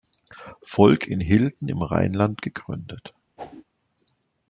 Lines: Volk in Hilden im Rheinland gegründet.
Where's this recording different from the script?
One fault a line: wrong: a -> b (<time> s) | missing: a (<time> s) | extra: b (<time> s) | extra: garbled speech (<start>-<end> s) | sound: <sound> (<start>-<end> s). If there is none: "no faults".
sound: whoosh (3.4-3.6 s)